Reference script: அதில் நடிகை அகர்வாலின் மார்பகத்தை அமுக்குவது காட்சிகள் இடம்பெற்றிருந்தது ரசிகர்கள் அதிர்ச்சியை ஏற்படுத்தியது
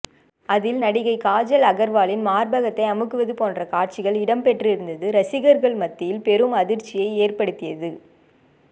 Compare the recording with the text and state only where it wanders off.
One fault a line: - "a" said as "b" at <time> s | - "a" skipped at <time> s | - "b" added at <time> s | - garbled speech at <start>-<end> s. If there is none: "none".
- "காஜல்" added at 1.2 s
- "போன்ற" added at 3.3 s
- "மத்தியில் பெரும்" added at 5.8 s